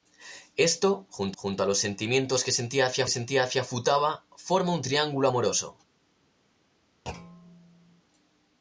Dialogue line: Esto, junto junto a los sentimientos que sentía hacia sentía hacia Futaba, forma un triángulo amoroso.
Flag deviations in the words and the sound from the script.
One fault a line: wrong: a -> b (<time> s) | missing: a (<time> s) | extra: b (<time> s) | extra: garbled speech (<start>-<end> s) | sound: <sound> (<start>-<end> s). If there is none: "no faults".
sound: thud (7.1-8.0 s)